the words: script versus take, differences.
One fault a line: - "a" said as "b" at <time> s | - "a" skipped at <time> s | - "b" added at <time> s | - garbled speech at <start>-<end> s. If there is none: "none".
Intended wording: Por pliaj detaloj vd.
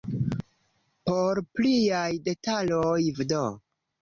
none